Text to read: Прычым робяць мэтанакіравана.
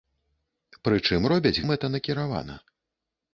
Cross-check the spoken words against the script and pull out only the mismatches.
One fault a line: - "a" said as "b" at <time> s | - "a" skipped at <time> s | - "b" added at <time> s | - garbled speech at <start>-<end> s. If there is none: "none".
none